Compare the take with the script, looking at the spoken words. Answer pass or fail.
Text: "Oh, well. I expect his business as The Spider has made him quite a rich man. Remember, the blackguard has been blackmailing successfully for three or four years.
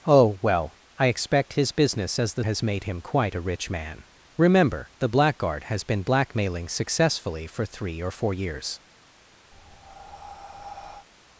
fail